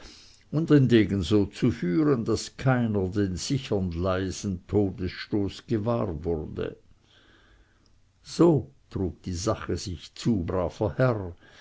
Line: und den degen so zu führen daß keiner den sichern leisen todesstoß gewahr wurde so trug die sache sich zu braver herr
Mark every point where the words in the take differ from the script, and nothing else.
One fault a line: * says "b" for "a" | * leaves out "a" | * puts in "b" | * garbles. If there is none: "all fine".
all fine